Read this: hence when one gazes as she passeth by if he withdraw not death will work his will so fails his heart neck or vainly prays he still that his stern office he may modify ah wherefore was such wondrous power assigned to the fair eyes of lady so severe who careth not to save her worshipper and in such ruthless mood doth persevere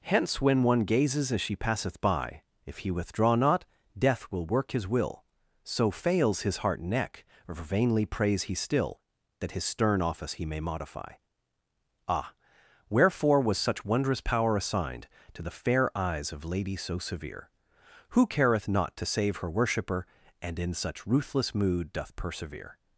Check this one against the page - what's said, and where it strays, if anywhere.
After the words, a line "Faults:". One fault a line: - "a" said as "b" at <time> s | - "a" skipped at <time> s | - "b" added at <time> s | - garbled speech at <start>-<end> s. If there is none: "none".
hence when one gazes as she passeth by if he withdraw not death will work his will so fails his heart neck or vainly prays he still that his stern office he may modify ah wherefore was such wondrous power assigned to the fair eyes of lady so severe who careth not to save her worshipper and in such ruthless mood doth persevere
Faults:
none